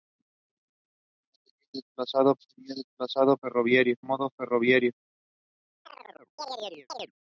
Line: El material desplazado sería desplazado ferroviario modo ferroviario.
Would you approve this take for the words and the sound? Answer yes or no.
no